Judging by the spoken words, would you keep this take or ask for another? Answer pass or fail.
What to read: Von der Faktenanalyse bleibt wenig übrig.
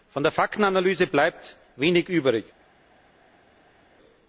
pass